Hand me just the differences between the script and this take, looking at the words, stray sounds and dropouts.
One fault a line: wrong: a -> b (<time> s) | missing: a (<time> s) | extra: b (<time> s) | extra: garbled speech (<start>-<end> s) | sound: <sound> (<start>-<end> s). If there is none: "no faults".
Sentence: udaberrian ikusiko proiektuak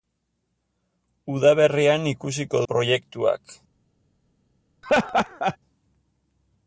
sound: laugh (4.8-5.6 s)